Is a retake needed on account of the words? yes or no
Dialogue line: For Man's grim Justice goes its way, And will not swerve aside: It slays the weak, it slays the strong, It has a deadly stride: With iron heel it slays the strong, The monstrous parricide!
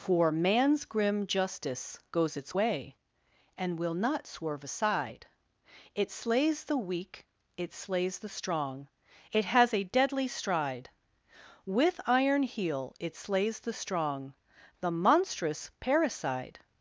no